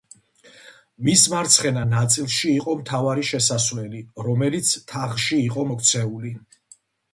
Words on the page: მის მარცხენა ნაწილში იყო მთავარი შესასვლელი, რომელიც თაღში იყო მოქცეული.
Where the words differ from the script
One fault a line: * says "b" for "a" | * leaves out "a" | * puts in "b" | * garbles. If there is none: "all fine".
all fine